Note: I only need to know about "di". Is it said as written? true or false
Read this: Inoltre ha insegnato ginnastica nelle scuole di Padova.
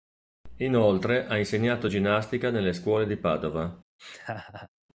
true